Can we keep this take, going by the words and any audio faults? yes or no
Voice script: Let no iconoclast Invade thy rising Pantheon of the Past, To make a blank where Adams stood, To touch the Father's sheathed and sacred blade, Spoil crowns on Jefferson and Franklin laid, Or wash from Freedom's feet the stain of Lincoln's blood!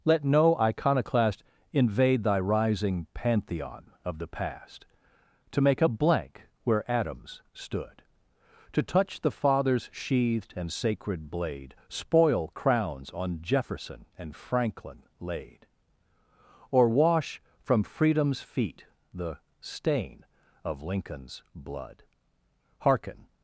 no